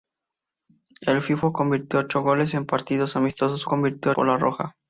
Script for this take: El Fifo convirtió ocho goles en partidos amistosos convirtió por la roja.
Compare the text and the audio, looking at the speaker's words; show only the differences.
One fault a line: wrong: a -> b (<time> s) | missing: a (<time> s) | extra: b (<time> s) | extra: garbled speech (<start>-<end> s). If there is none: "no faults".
no faults